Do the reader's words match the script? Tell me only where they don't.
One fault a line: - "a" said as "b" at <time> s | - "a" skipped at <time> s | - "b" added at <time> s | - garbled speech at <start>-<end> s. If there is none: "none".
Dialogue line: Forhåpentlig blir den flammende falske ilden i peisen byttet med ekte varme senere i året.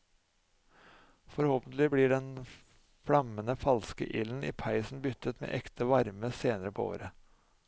- "i" said as "på" at 6.7 s